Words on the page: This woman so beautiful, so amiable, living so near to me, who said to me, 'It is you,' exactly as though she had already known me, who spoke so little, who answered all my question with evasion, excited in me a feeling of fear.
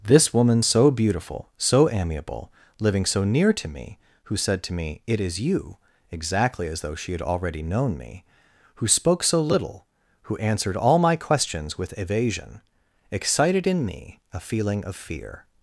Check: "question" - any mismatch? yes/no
yes